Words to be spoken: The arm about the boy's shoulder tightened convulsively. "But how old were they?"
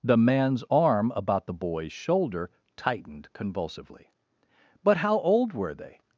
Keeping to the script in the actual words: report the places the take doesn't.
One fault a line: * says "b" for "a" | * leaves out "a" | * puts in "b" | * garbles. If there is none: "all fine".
* puts in "man's"